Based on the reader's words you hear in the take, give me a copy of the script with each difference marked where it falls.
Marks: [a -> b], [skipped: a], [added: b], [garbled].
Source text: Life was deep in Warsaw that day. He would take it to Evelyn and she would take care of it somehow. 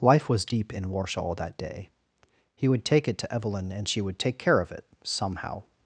Life was deep in Warsaw that day. He would take it to Evelyn and she would take care of it somehow.